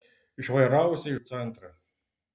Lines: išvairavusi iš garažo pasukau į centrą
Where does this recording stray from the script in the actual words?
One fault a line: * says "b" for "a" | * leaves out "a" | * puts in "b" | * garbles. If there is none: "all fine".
* leaves out "iš garažo pasukau"